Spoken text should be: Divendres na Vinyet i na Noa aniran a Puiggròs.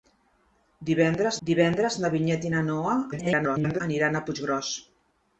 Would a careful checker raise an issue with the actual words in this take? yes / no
yes